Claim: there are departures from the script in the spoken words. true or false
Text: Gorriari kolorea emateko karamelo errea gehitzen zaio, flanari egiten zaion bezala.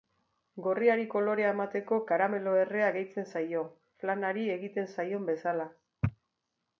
false